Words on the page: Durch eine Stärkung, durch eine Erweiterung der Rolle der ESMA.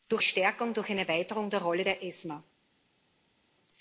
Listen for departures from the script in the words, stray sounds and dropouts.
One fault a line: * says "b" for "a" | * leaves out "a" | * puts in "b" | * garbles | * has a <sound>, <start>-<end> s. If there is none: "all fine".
* leaves out "eine"